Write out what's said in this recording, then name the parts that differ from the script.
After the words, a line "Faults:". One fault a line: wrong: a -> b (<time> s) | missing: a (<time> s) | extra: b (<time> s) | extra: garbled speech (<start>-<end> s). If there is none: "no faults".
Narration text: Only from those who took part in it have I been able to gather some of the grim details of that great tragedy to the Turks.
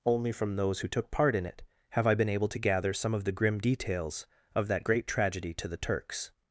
Only from those who took part in it have I been able to gather some of the grim details of that great tragedy to the Turks.
Faults:
no faults